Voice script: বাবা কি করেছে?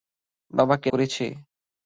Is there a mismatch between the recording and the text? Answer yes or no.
no